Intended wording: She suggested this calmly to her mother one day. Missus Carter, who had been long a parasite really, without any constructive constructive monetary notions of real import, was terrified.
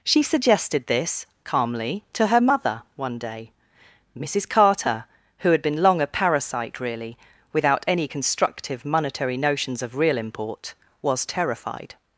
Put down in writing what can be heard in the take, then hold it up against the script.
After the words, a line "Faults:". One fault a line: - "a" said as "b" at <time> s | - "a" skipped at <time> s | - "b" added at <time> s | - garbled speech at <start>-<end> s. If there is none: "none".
She suggested this calmly to her mother one day. Missus Carter, who had been long a parasite really, without any constructive monetary notions of real import, was terrified.
Faults:
- "constructive" skipped at 8.8 s